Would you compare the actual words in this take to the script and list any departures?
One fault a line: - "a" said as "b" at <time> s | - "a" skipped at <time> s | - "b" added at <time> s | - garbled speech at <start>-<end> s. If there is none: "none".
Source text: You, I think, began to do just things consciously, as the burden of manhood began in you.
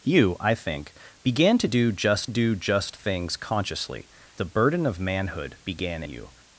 - "do just" added at 2.3 s
- "as" skipped at 4.1 s
- "in" skipped at 6.0 s